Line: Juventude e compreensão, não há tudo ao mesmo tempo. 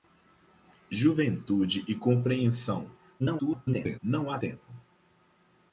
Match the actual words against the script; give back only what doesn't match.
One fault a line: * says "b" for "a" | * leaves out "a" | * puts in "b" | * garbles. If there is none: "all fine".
* garbles
* leaves out "tudo ao mesmo"